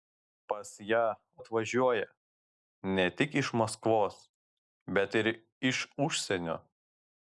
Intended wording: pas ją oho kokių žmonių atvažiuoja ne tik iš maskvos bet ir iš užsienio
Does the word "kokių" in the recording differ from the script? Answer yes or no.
yes